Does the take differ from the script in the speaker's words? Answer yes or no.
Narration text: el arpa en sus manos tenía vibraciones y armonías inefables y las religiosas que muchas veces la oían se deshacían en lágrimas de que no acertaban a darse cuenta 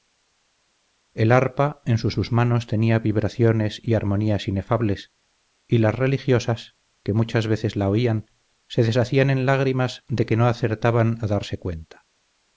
yes